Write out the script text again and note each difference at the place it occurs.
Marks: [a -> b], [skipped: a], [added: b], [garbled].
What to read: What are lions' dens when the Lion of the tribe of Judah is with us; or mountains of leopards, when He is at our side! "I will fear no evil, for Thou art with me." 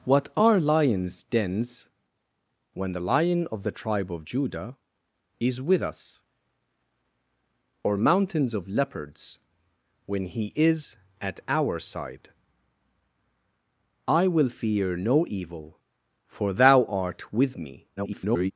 What are lions' dens when the Lion of the tribe of Judah is with us; or mountains of leopards, when He is at our side! "I will fear no evil, for Thou art with me." [garbled]